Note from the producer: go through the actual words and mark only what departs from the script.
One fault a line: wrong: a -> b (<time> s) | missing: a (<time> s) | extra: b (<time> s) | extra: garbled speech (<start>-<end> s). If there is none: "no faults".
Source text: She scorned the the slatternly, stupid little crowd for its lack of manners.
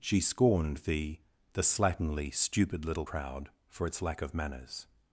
no faults